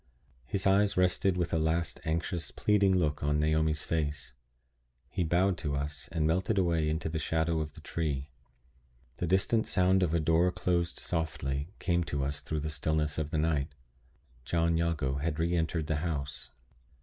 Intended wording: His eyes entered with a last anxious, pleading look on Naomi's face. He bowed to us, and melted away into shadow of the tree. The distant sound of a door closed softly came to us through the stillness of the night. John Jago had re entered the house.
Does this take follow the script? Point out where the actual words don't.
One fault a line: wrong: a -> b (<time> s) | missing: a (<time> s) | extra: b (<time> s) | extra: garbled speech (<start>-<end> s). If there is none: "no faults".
wrong: entered -> rested (1.0 s)
extra: the (7.1 s)